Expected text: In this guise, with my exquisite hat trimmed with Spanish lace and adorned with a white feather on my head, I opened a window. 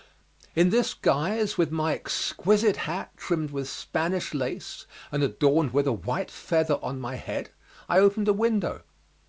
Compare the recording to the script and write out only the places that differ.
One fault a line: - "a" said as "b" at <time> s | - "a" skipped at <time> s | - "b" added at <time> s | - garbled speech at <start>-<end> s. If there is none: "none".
none